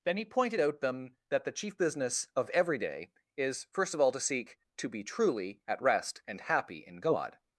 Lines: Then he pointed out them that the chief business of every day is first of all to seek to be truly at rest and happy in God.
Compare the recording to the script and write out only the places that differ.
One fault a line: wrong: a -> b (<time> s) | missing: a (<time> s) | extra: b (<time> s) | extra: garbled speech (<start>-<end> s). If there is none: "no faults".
no faults